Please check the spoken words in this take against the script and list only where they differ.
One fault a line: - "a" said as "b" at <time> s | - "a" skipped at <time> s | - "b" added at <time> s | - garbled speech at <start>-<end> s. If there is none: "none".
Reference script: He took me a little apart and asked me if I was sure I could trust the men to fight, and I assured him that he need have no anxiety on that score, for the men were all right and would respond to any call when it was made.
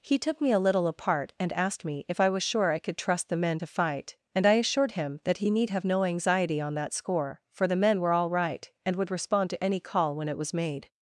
none